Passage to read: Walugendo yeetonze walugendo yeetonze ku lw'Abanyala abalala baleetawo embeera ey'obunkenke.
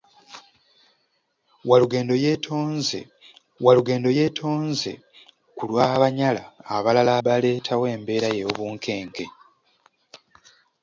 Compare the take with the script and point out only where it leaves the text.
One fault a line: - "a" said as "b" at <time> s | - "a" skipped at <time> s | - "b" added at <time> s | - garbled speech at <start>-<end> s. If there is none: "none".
none